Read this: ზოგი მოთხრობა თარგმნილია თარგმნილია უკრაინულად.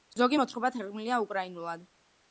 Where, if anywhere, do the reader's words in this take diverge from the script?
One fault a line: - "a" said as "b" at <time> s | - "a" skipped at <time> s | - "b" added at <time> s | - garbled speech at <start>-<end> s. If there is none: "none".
- "თარგმნილია" skipped at 1.2 s